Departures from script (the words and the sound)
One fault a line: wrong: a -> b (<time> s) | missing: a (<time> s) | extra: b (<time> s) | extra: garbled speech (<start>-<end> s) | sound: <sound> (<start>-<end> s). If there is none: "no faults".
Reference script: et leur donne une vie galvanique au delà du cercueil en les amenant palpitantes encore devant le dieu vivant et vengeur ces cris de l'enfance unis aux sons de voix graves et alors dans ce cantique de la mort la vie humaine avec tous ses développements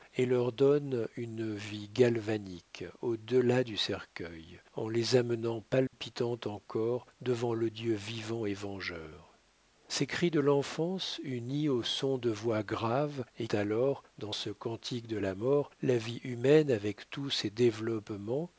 sound: dropout (5.9-5.9 s)